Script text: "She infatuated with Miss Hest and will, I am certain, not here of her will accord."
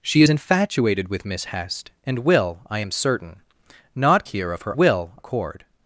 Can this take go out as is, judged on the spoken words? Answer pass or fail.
pass